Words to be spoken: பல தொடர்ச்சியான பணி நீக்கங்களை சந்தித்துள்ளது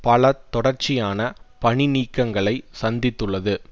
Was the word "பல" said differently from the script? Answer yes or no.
no